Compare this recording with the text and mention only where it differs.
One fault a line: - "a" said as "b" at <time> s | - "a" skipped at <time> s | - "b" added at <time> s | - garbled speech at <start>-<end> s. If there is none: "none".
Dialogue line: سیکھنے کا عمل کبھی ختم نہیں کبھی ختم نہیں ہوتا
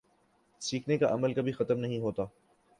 - "کبھی ختم نہیں" skipped at 2.0 s